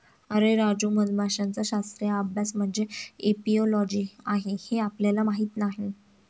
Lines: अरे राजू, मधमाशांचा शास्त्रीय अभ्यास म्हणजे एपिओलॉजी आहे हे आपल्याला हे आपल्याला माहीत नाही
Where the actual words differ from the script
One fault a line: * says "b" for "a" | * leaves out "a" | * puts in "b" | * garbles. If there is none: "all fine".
* leaves out "हे आपल्याला"